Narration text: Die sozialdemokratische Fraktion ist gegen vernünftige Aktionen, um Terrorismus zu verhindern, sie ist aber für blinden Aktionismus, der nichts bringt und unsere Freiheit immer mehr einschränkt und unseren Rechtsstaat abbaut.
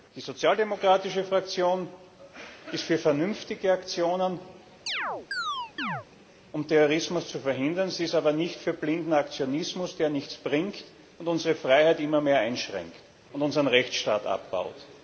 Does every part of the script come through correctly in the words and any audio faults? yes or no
no